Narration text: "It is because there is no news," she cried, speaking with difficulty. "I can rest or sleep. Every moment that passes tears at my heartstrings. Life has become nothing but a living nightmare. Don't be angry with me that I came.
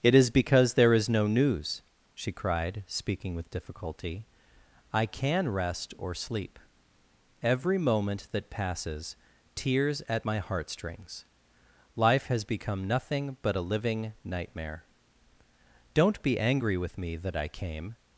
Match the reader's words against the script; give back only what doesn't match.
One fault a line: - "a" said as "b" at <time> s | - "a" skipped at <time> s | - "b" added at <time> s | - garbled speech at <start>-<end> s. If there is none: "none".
none